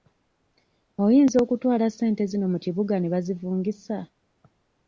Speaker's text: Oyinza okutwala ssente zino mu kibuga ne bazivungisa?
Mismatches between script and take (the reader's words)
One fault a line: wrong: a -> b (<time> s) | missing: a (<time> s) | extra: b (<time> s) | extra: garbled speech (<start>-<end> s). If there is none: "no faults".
no faults